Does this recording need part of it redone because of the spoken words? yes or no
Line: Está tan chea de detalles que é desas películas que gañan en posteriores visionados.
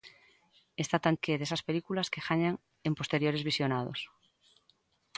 yes